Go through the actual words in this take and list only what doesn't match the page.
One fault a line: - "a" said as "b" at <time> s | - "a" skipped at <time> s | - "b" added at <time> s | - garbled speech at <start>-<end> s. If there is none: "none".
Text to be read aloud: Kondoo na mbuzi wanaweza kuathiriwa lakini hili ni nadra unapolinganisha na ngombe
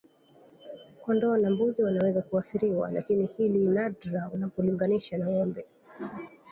- "ni" skipped at 3.7 s